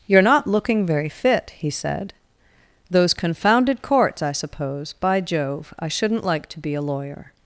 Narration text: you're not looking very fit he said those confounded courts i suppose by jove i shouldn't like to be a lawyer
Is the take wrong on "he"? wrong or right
right